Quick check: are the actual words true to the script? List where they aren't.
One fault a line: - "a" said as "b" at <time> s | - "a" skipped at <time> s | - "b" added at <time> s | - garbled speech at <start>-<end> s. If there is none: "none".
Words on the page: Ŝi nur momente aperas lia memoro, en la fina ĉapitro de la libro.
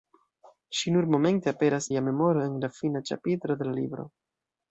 none